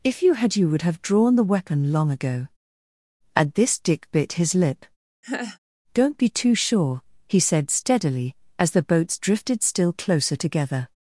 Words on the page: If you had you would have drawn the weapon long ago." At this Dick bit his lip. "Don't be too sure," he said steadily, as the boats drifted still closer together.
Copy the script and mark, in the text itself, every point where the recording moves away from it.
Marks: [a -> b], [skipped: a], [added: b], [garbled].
If you had you would have drawn the weapon long ago." At this Dick bit his lip. "Don't be too sure," he said steadily, as the boats drifted still closer together.